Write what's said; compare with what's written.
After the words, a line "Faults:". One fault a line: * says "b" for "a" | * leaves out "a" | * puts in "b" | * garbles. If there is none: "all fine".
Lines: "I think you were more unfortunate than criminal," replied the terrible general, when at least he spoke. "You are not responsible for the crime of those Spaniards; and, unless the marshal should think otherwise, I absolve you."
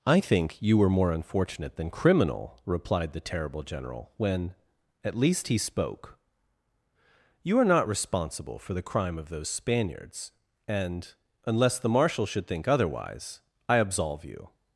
"I think you were more unfortunate than criminal," replied the terrible general, when at least he spoke. "You are not responsible for the crime of those Spaniards; and, unless the marshal should think otherwise, I absolve you."
Faults:
all fine